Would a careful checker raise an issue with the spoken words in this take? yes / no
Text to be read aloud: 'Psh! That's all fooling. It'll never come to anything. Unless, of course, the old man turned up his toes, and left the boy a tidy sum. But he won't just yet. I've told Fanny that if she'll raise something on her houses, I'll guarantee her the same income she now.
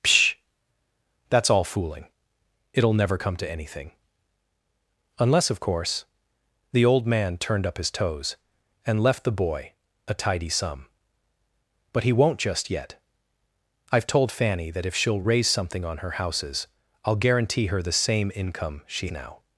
no